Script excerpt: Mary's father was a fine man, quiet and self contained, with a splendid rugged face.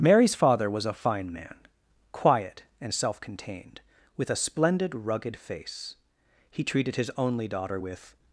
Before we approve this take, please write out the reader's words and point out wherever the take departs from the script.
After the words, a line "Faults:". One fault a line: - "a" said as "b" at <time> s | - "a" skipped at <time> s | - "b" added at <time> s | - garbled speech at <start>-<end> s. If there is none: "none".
Mary's father was a fine man, quiet and self contained, with a splendid rugged face. He treated his only daughter with
Faults:
- "He treated his only daughter with" added at 6.5 s